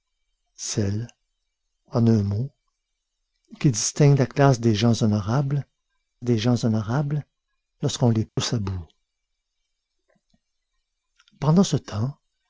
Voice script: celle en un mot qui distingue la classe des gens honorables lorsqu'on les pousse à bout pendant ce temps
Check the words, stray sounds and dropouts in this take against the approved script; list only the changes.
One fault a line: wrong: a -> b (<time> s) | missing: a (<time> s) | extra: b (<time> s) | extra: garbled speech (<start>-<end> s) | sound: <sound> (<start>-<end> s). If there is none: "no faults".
extra: des gens honorables (6.2 s)
sound: dropout (8.3-8.4 s)